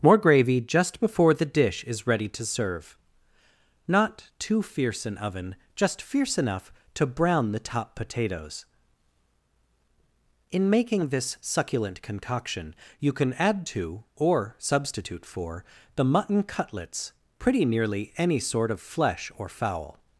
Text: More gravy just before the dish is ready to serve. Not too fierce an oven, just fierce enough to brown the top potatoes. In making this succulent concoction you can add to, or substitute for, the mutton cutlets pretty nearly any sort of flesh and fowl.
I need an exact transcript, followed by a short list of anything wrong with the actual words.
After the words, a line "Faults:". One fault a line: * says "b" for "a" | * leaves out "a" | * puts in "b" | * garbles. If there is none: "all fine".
More gravy just before the dish is ready to serve. Not too fierce an oven, just fierce enough to brown the top potatoes. In making this succulent concoction you can add to, or substitute for, the mutton cutlets pretty nearly any sort of flesh or fowl.
Faults:
* says "or" for "and"